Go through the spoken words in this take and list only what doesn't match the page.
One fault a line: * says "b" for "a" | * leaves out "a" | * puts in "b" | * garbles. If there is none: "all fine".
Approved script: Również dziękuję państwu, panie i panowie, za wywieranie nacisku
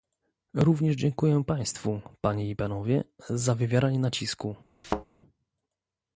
all fine